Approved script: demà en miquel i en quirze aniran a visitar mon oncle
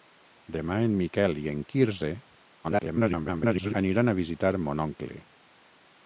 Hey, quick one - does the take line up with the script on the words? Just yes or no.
no